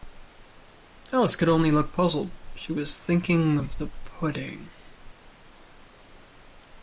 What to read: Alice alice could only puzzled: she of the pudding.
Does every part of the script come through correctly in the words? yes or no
no